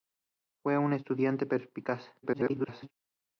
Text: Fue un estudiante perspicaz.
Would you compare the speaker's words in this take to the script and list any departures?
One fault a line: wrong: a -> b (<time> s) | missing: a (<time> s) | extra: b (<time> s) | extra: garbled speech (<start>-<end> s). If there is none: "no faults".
extra: garbled speech (2.2-2.9 s)